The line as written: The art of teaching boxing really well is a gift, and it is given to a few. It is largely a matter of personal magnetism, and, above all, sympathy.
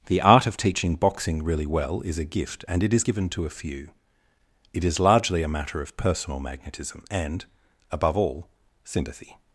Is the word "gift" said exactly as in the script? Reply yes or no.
yes